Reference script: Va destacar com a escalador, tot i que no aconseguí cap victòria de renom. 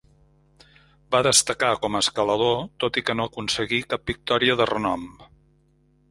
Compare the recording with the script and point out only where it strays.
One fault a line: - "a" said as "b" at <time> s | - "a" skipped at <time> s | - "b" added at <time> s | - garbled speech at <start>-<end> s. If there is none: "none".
none